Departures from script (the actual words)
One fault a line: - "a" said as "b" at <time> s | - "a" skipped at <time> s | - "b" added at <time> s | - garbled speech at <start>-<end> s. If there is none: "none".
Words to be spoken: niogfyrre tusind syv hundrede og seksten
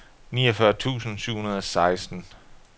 none